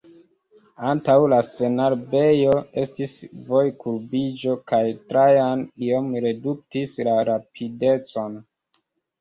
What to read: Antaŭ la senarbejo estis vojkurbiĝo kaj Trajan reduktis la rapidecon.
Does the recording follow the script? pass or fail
fail